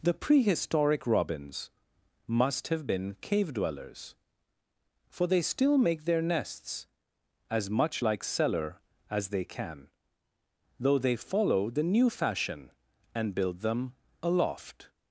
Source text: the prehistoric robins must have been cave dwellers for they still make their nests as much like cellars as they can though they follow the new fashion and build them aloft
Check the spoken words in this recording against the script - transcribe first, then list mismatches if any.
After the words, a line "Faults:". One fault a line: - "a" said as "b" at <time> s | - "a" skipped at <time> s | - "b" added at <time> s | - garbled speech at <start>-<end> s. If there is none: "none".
the prehistoric robins must have been cave dwellers for they still make their nests as much like cellar as they can though they follow the new fashion and build them aloft
Faults:
- "cellars" said as "cellar" at 8.2 s